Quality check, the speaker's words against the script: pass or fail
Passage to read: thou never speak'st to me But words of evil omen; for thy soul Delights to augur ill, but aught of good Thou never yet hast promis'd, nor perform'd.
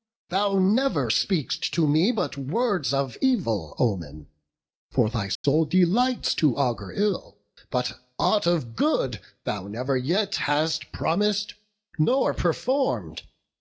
pass